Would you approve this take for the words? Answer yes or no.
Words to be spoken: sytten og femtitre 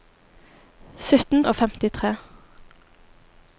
yes